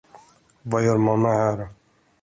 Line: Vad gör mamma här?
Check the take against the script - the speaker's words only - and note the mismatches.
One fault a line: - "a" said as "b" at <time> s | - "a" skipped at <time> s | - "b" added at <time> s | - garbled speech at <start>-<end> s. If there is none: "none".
none